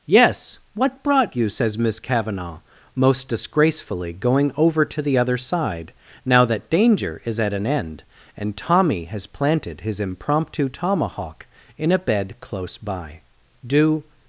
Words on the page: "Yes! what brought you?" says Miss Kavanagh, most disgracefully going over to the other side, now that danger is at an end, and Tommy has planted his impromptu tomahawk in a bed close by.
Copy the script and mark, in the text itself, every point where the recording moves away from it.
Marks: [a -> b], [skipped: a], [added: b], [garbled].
"Yes! what brought you?" says Miss Kavanagh, most disgracefully going over to the other side, now that danger is at an end, and Tommy has planted his impromptu tomahawk in a bed close by. [added: Do]